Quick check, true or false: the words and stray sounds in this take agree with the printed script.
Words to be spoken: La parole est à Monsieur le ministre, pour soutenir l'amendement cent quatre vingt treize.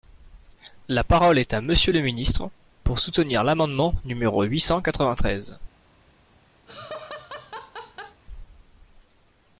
false